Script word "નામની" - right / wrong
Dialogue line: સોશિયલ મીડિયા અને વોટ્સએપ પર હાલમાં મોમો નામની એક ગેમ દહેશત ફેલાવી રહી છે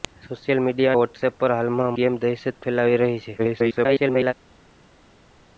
wrong